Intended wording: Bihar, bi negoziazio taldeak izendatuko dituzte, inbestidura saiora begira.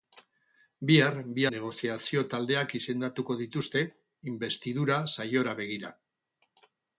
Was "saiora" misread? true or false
false